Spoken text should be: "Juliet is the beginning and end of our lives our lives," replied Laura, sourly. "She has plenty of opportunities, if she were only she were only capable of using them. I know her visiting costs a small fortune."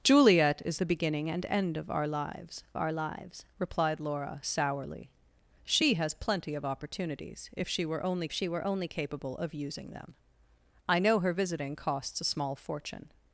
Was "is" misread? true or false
false